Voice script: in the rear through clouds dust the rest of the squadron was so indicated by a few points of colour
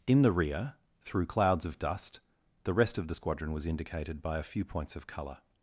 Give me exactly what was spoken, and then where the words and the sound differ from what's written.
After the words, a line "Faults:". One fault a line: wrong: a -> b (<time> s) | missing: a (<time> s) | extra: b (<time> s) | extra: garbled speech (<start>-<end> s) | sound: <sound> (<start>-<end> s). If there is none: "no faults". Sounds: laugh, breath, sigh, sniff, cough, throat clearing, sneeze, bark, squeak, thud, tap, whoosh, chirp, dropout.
in the rear through clouds of dust the rest of the squadron was indicated by a few points of colour
Faults:
extra: of (1.6 s)
missing: so (3.7 s)